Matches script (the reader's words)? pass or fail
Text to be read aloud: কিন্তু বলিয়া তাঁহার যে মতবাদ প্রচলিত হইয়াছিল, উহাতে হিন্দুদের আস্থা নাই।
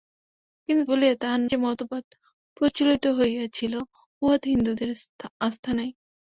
pass